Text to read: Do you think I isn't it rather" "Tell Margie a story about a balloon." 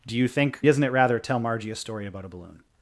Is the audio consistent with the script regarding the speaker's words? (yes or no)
yes